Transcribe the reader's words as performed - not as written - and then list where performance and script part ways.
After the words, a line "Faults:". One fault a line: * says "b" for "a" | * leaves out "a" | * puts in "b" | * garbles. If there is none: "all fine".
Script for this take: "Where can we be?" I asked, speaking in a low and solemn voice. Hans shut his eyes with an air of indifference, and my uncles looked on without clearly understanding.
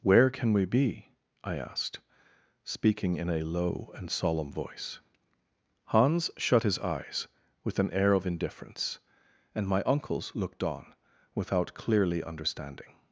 "Where can we be?" I asked, speaking in a low and solemn voice. Hans shut his eyes with an air of indifference, and my uncles looked on without clearly understanding.
Faults:
all fine